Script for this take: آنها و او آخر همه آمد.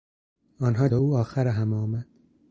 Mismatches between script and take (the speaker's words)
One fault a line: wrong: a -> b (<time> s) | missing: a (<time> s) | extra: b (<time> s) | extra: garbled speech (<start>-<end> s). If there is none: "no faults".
no faults